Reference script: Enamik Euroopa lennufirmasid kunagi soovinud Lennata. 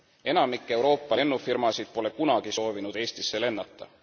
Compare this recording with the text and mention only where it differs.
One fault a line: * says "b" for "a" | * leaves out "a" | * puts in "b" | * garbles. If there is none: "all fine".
* puts in "pole"
* puts in "Eestisse"